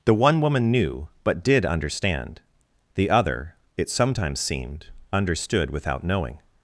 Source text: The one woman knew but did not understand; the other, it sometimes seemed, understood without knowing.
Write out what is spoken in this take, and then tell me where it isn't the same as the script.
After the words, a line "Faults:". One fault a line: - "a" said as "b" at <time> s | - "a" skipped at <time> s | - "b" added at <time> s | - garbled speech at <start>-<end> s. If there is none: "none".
The one woman knew but did understand; the other, it sometimes seemed, understood without knowing.
Faults:
- "not" skipped at 1.6 s